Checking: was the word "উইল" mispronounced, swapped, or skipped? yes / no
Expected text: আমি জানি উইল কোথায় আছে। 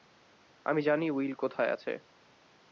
no